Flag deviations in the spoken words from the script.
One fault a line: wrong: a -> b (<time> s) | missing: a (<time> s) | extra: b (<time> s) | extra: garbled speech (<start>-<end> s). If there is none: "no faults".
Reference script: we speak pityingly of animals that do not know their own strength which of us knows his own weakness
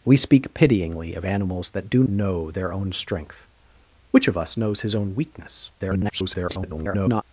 missing: not (2.0 s)
extra: garbled speech (5.8-7.2 s)